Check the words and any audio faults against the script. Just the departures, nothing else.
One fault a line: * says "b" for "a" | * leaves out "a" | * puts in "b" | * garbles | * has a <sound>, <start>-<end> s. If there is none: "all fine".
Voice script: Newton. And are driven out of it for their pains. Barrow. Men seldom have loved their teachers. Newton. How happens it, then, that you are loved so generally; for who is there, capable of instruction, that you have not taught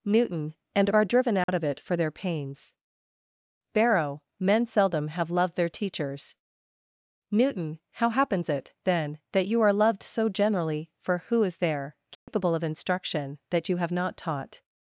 * has a dropout, 1.4-1.5 s
* has a dropout, 12.1-12.3 s